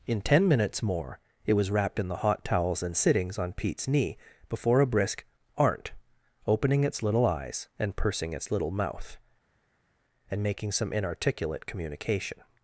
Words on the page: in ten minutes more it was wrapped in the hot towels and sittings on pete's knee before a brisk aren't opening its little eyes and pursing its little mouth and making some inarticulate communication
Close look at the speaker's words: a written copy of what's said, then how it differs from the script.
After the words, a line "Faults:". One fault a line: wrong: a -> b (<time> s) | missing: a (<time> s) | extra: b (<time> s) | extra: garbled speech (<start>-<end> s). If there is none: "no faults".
in ten minutes more it was wrapped in the hot towels and sittings on pete's knee before a brisk aren't opening its little eyes and pursing its little mouth and making some inarticulate communication
Faults:
no faults